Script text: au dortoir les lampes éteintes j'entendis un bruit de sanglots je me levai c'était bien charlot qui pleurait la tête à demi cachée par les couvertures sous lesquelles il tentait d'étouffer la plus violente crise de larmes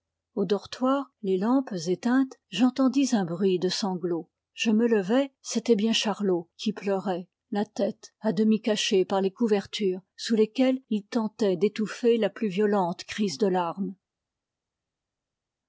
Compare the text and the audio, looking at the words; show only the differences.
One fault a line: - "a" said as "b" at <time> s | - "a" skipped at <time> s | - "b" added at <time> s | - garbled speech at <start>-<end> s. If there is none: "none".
none